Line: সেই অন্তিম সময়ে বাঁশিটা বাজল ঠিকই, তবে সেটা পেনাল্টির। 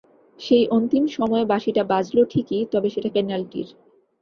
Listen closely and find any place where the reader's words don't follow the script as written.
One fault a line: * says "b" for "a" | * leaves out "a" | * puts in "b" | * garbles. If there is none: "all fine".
all fine